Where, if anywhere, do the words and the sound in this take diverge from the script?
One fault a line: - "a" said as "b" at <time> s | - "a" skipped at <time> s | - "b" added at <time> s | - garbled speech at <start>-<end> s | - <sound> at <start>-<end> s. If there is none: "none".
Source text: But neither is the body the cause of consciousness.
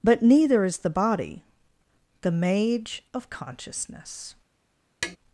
- "cause" said as "mage" at 2.3 s
- tap at 5.0-5.2 s